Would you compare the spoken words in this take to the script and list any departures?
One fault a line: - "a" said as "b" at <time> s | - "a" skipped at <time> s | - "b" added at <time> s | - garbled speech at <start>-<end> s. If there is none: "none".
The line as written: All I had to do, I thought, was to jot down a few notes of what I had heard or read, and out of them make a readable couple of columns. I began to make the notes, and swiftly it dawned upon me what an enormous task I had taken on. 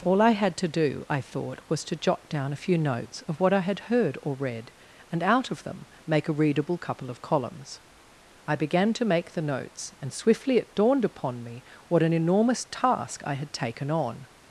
none